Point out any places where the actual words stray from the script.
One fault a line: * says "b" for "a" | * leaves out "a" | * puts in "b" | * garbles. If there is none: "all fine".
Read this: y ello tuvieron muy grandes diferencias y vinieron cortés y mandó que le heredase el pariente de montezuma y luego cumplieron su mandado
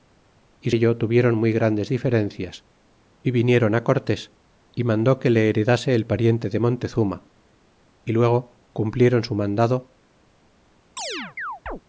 all fine